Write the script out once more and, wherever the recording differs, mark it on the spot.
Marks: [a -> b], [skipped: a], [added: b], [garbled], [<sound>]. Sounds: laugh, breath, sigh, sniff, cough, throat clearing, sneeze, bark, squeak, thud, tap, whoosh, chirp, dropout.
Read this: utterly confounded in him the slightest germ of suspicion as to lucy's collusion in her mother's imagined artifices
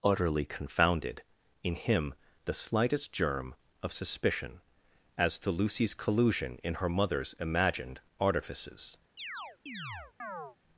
utterly confounded in him the slightest germ of suspicion as to lucy's collusion in her mother's imagined artifices [chirp]